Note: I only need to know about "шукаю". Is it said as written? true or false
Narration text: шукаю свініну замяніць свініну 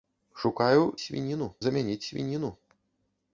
true